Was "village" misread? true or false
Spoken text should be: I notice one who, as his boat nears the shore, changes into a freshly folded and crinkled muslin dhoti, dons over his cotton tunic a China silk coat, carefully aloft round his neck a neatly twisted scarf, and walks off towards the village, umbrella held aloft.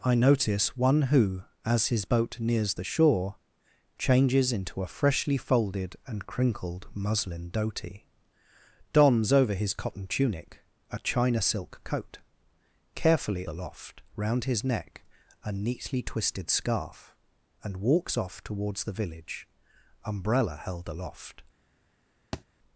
false